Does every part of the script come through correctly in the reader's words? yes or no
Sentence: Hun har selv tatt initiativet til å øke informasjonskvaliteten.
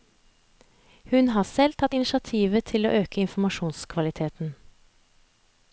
yes